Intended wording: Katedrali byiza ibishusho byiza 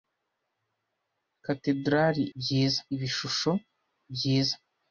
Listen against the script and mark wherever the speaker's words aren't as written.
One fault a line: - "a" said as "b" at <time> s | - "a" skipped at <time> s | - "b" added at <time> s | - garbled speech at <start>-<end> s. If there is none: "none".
none